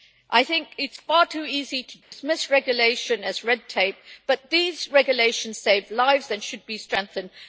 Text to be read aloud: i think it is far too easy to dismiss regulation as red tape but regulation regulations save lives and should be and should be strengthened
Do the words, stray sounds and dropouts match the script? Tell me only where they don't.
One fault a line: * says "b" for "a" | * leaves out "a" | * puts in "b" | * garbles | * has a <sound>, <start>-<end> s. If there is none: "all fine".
* has a dropout, 2.0-2.1 s
* says "these" for "regulation"
* leaves out "and should be"